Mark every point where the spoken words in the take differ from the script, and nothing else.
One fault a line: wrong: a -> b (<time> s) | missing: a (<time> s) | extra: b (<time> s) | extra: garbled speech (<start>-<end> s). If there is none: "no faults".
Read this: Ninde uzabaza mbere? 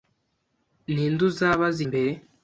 no faults